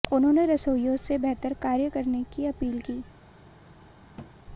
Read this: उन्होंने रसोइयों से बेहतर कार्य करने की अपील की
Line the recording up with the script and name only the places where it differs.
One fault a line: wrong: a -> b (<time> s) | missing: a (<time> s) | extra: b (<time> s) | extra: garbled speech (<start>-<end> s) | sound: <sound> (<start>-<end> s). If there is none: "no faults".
sound: thud (4.2-4.3 s)